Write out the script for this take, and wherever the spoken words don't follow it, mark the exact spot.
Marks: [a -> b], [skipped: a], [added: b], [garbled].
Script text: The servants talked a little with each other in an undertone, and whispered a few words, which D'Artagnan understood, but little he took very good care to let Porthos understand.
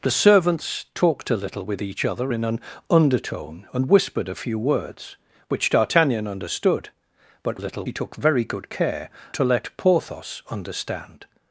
The servants talked a little with each other in an undertone, and whispered a few words, which D'Artagnan understood, but little he took very good care to let Porthos understand.